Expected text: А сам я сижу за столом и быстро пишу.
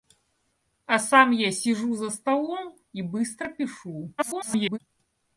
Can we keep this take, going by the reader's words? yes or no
no